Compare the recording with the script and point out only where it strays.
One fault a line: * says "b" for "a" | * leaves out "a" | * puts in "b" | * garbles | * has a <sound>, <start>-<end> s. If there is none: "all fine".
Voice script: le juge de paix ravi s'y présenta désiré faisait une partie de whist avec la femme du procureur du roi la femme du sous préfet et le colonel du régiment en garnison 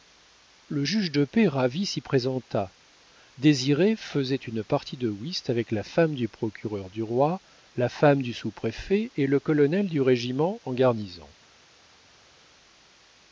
all fine